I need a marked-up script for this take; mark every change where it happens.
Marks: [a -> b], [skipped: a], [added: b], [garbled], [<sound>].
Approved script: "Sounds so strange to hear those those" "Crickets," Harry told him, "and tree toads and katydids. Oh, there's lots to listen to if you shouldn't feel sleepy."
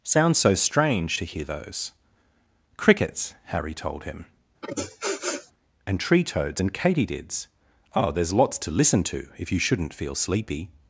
"Sounds so strange to hear those [skipped: those"] "Crickets," Harry told him, [sniff] "and tree toads and katydids. Oh, there's lots to listen to if you shouldn't feel sleepy."